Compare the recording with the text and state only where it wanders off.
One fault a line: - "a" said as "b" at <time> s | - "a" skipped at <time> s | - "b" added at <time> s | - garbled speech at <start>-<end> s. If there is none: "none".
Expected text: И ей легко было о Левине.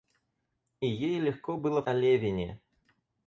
none